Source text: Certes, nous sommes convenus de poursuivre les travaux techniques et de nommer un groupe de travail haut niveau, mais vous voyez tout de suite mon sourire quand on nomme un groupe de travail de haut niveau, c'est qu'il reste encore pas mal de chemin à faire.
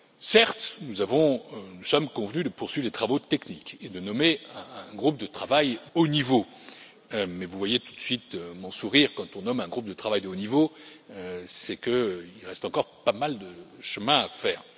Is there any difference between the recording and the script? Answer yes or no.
no